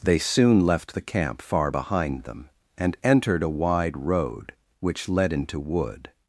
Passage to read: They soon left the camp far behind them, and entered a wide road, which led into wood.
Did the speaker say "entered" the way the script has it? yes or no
yes